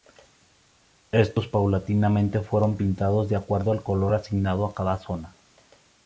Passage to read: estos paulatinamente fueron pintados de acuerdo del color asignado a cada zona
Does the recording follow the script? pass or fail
fail